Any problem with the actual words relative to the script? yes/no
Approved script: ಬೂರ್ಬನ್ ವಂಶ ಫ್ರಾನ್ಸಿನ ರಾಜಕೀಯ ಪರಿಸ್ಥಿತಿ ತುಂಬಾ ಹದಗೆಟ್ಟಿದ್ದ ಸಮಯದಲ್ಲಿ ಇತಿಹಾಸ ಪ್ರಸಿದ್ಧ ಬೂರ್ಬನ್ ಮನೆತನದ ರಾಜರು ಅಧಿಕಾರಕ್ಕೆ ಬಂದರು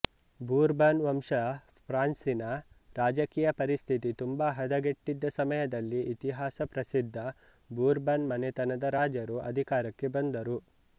no